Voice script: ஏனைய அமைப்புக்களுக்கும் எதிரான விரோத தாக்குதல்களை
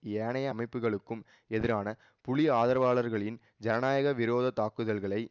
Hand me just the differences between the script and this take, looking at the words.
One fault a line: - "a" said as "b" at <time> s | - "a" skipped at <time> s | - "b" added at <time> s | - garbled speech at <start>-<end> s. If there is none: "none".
- "புலி ஆதரவாளர்களின் ஜனநாயக" added at 2.2 s